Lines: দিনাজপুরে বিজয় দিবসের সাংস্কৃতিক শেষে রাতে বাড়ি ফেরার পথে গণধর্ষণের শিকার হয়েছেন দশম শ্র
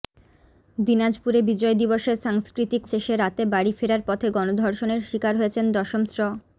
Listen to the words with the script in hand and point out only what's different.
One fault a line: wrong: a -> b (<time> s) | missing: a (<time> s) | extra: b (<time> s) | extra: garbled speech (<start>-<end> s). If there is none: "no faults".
no faults